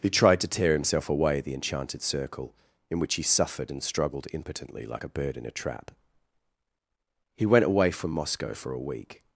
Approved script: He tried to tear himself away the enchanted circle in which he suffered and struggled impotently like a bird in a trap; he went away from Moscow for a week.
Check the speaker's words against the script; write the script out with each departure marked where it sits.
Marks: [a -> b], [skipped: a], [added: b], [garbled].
He tried to tear himself away the enchanted circle in which he suffered and struggled impotently like a bird in a trap; he went away from Moscow for a week.